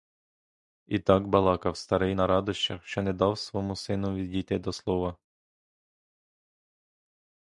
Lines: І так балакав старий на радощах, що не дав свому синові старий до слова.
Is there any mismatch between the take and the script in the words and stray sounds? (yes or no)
yes